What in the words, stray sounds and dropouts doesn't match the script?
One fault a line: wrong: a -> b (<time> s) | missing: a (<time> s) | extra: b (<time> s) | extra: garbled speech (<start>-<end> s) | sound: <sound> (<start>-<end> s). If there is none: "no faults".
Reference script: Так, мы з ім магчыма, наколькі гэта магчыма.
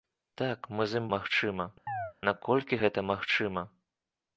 sound: chirp (1.9-2.1 s)